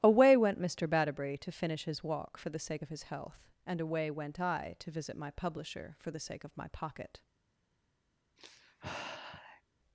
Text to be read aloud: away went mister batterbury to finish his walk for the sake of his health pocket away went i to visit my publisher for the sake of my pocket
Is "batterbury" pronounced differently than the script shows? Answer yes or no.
no